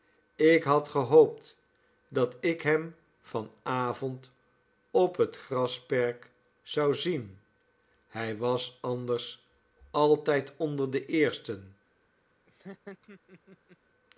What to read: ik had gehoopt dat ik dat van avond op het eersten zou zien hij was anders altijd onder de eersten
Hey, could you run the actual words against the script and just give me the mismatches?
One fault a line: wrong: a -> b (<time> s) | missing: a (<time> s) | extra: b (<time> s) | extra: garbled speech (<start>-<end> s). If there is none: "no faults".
wrong: dat -> hem (2.6 s)
wrong: eersten -> grasperk (5.4 s)